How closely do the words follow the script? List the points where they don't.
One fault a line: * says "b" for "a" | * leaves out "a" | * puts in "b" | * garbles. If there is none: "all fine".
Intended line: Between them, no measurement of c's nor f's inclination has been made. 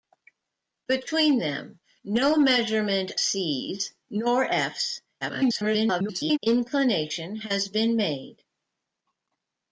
* leaves out "of"
* garbles